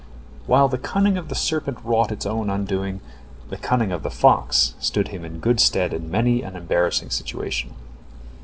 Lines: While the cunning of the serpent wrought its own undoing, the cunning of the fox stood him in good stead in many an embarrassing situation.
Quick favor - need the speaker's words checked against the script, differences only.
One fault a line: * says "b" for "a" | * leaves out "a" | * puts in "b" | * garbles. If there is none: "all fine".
all fine